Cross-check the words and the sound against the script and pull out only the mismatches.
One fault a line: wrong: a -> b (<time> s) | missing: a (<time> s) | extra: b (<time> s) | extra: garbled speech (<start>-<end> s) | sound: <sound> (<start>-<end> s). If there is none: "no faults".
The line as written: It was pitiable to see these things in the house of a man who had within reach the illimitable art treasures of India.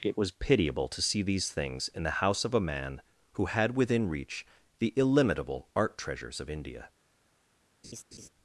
sound: laugh (7.8-8.3 s)